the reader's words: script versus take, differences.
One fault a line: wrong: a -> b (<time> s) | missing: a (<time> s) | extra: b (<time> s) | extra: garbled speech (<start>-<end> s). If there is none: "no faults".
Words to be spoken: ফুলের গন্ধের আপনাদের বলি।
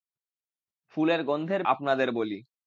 no faults